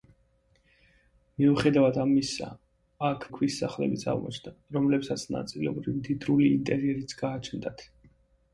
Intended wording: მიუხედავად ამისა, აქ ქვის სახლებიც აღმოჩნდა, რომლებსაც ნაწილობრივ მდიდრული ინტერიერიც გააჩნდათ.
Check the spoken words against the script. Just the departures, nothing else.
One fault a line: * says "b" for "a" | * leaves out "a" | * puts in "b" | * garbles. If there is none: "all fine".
all fine